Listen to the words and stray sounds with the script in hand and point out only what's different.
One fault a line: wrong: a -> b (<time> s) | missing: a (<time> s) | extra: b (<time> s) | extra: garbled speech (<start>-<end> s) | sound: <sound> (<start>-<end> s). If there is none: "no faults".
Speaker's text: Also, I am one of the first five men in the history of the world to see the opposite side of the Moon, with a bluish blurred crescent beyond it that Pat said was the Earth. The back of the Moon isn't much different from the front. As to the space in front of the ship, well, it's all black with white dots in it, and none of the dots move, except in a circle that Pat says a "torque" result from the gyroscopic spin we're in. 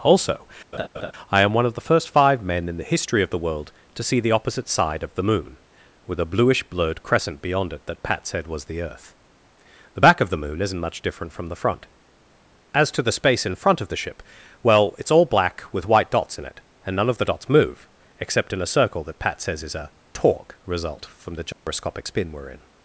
sound: laugh (0.7-1.1 s)
extra: is (19.6 s)
sound: dropout (21.5-21.7 s)